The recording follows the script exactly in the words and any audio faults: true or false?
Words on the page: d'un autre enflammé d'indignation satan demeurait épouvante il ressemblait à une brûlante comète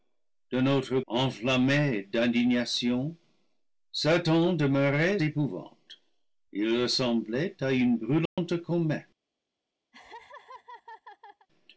false